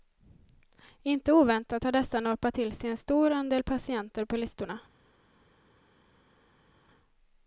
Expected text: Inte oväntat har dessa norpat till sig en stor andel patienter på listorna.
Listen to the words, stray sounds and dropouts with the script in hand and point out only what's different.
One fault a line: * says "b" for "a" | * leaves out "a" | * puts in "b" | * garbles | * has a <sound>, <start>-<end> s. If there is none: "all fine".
all fine